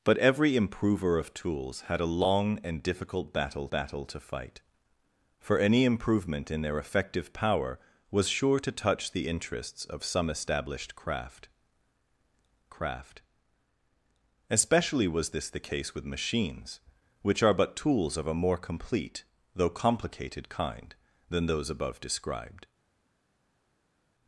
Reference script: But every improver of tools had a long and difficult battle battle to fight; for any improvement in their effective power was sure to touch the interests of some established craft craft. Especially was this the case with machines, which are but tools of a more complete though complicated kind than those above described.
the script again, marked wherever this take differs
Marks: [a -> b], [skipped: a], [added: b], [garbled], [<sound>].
But every improver of tools had a long and difficult battle battle to fight; for any improvement in their effective power was sure to touch the interests of some established craft craft. Especially was this the case with machines, which are but tools of a more complete though complicated kind than those above described.